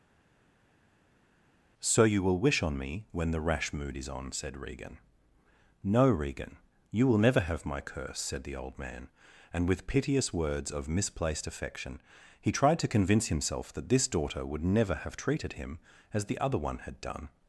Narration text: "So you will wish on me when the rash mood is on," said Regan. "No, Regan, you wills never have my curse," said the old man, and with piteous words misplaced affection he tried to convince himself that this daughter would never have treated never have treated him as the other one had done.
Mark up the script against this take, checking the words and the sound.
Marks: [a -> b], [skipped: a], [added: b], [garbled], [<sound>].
"So you will wish on me when the rash mood is on," said Regan. "No, Regan, you [wills -> will] never have my curse," said the old man, and with piteous words [added: of] misplaced affection he tried to convince himself that this daughter would never have treated [skipped: never have treated] him as the other one had done.